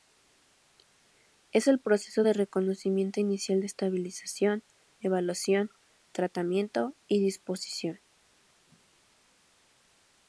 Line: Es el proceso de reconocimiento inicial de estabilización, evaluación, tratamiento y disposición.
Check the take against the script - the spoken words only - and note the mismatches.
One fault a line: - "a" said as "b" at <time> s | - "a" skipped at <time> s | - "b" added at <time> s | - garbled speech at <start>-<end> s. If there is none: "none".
none